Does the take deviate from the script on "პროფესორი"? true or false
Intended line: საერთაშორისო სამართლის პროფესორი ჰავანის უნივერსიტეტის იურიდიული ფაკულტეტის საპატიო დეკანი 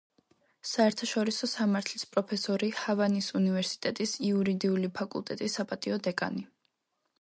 false